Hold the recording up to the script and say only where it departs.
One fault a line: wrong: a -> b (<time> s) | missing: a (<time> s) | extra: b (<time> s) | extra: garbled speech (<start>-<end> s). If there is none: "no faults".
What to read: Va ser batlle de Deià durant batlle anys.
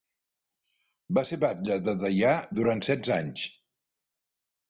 wrong: batlle -> setze (2.9 s)